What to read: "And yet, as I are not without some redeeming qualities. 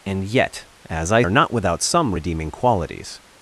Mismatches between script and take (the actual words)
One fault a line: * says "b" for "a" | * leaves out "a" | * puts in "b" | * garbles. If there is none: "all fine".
all fine